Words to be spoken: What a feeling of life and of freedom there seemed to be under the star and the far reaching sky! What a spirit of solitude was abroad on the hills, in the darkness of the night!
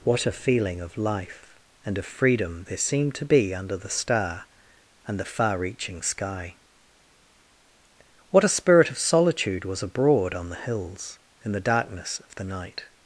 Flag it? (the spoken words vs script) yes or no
no